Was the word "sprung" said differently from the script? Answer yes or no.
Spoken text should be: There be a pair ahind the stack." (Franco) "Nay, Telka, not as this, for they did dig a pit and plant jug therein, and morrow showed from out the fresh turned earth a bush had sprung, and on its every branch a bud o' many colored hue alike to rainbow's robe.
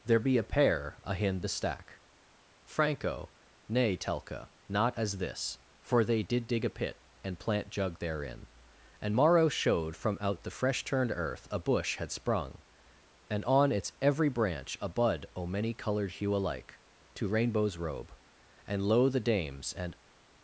no